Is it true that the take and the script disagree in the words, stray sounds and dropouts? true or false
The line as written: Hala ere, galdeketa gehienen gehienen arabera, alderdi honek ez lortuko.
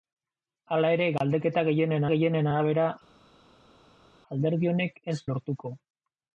false